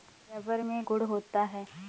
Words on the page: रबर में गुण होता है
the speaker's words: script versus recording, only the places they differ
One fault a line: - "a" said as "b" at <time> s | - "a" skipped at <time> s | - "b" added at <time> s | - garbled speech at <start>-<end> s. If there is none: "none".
none